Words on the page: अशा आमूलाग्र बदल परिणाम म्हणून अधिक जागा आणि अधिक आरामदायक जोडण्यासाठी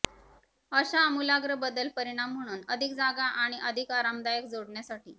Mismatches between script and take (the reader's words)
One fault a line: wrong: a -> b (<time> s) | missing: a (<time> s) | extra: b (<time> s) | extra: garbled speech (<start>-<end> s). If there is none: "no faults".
no faults